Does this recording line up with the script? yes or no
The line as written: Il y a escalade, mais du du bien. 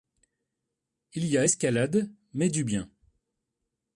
no